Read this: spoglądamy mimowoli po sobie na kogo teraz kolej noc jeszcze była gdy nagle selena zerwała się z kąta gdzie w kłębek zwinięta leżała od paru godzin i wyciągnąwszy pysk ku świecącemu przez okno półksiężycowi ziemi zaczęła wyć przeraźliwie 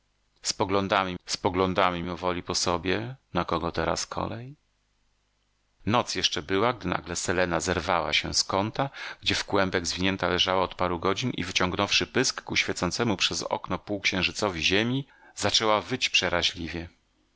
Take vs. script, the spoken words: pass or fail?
fail